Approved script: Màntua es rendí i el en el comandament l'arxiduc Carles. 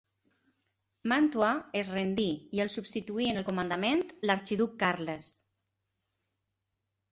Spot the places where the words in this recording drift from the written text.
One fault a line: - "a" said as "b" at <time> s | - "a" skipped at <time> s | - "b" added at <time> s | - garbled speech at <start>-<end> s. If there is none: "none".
- "substituí" added at 2.8 s